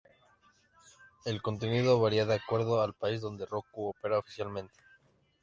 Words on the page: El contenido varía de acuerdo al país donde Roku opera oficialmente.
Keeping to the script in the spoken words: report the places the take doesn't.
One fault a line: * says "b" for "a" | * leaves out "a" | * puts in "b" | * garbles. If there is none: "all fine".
all fine